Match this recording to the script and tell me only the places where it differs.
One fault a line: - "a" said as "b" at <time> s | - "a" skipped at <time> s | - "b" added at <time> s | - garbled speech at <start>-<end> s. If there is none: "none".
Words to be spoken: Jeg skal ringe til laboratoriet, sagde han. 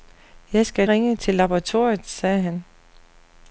none